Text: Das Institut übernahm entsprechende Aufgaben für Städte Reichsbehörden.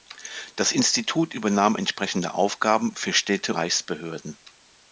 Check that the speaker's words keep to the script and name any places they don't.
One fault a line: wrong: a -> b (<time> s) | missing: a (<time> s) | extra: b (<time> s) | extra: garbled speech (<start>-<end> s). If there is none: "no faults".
no faults